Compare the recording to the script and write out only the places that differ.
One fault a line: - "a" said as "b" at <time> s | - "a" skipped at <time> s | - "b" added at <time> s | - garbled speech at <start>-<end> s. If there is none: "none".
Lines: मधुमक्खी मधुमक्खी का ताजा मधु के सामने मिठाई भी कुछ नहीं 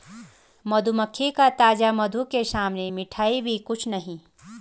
- "मधुमक्खी" skipped at 1.3 s